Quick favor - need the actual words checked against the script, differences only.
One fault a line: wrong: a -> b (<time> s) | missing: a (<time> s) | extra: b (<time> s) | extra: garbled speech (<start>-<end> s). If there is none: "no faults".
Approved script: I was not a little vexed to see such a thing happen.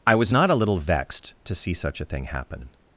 no faults